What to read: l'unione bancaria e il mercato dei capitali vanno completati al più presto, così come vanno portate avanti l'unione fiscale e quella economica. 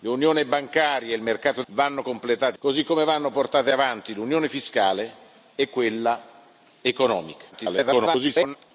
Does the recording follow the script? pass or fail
fail